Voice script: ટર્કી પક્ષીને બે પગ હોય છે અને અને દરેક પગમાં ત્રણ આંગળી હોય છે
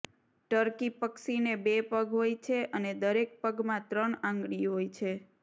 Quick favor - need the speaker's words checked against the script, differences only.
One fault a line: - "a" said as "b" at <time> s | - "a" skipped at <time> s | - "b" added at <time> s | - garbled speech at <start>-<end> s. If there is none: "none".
- "અને" skipped at 2.9 s